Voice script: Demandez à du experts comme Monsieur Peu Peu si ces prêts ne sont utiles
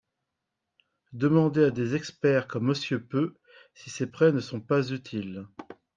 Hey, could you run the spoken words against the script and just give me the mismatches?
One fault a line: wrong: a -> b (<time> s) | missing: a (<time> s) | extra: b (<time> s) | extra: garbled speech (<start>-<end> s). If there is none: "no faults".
wrong: du -> des (1.7 s)
missing: Peu (3.4 s)
extra: pas (4.6 s)